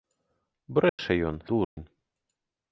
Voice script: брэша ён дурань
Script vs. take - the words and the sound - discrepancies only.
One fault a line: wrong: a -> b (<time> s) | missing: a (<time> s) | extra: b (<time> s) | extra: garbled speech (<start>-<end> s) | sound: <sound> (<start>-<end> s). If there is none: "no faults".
sound: dropout (0.9-1.0 s)
sound: dropout (1.6-1.8 s)